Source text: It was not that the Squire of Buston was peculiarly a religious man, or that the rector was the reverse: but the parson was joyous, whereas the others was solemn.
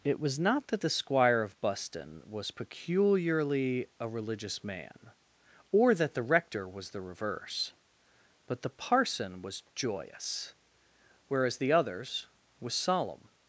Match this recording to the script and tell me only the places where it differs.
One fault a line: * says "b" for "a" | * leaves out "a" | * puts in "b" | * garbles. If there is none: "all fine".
all fine